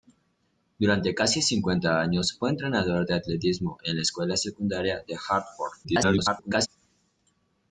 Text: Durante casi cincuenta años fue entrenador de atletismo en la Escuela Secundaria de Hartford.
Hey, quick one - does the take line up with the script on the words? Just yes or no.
no